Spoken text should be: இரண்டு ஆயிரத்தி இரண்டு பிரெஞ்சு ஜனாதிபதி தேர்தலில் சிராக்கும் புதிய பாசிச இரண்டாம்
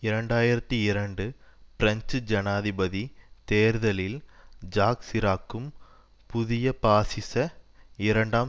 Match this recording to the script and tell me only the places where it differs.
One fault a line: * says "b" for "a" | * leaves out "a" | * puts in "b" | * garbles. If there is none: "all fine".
* puts in "ஜாக்"